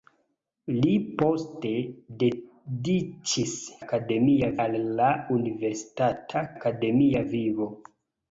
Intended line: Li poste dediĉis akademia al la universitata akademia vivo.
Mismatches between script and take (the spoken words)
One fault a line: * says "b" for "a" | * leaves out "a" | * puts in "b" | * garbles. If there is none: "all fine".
all fine